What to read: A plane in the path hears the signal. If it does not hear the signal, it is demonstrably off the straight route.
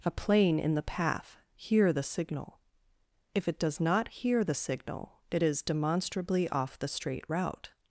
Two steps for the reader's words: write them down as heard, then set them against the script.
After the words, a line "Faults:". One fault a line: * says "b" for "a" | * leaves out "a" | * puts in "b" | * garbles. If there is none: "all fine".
A plane in the path hear the signal. If it does not hear the signal, it is demonstrably off the straight route.
Faults:
* says "hear" for "hears"